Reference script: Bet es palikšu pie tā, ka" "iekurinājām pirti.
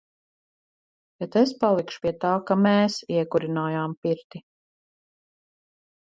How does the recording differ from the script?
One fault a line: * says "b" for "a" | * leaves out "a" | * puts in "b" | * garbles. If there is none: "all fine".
* puts in "mēs"